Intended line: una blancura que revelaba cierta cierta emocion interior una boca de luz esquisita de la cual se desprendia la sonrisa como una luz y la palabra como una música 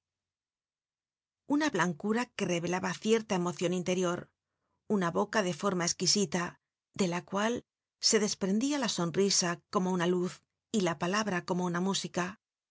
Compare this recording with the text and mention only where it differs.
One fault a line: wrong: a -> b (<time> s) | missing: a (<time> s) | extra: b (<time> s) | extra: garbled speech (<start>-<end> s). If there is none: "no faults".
missing: cierta (3.3 s)
wrong: luz -> forma (5.5 s)